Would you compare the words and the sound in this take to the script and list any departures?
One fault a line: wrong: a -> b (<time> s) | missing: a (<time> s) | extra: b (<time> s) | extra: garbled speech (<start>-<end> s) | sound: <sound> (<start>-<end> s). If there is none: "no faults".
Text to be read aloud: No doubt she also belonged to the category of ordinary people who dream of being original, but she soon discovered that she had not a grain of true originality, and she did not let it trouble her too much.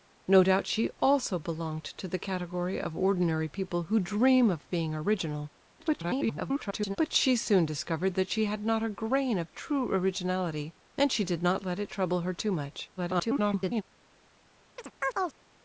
extra: garbled speech (5.8-7.0 s)
extra: garbled speech (13.0-13.8 s)
sound: chirp (14.8-15.4 s)